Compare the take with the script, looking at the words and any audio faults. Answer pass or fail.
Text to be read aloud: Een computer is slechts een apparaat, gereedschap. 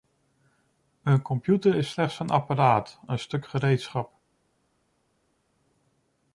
fail